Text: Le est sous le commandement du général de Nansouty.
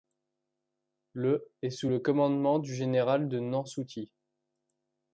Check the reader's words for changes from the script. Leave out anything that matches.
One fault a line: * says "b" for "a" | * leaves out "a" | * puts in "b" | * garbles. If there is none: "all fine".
all fine